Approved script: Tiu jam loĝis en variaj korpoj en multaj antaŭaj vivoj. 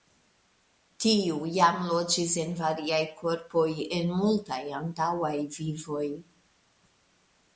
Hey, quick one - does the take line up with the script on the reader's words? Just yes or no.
yes